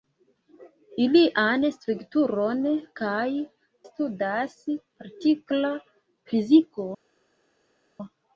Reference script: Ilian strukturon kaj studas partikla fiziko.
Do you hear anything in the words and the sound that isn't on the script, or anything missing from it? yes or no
no